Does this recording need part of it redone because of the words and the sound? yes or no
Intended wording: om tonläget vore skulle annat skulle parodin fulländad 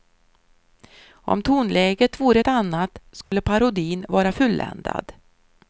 yes